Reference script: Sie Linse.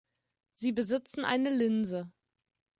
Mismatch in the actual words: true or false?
true